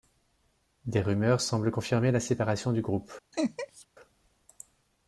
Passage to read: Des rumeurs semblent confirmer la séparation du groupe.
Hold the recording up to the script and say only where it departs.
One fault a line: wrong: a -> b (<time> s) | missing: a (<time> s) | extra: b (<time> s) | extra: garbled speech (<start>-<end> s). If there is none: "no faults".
no faults